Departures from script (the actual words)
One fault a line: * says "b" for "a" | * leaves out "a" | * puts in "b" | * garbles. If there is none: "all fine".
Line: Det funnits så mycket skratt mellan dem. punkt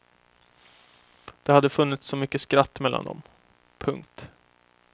* puts in "hade"